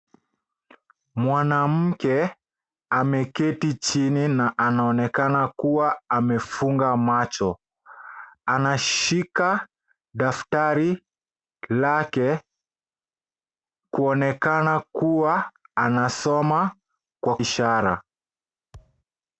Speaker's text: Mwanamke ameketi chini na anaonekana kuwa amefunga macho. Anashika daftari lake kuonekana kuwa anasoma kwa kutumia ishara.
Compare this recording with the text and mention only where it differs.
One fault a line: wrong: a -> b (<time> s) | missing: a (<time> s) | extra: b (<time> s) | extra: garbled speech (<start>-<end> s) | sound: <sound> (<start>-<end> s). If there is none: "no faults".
missing: kutumia (17.4 s)
sound: thud (18.7-19.0 s)